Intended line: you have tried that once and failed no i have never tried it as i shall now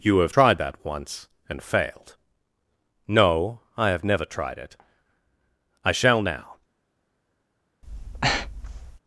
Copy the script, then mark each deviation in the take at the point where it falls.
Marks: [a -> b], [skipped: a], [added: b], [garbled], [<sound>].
you have tried that once and failed no i have never tried it [skipped: as] i shall now [breath]